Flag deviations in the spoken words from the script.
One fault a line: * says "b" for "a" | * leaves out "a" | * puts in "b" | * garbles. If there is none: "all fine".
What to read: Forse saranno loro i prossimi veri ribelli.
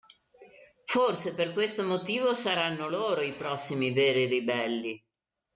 * puts in "per questo motivo"